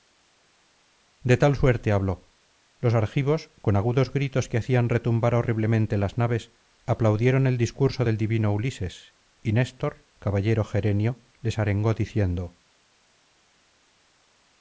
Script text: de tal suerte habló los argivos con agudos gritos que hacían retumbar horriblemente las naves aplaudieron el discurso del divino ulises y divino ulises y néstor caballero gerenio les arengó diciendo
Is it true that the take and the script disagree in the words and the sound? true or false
true